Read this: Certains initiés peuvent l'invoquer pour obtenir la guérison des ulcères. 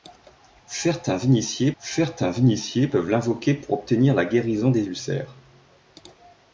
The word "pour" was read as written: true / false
true